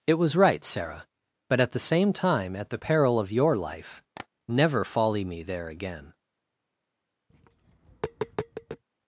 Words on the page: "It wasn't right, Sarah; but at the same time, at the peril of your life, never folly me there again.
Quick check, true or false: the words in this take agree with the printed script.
false